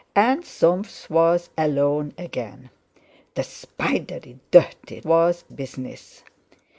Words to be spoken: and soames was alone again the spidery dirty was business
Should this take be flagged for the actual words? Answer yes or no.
no